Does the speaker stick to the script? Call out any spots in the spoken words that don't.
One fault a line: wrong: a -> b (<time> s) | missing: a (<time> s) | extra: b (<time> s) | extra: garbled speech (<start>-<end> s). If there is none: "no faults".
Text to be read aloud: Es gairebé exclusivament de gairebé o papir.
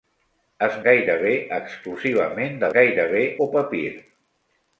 no faults